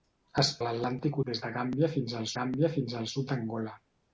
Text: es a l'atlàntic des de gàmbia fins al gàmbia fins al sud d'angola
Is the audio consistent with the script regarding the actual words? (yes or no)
yes